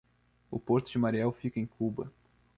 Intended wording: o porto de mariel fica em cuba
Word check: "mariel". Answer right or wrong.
right